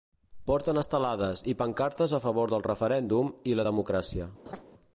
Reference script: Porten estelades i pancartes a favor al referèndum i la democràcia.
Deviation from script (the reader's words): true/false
true